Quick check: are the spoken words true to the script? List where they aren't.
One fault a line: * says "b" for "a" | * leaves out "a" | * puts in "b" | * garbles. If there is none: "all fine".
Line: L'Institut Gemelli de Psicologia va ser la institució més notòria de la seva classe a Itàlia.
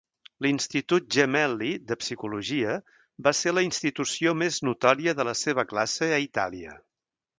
all fine